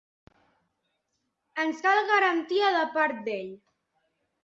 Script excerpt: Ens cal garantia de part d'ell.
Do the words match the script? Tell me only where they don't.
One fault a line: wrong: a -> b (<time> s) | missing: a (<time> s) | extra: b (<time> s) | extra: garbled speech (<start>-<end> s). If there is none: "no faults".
no faults